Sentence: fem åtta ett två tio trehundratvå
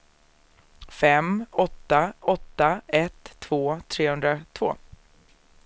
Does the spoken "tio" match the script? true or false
false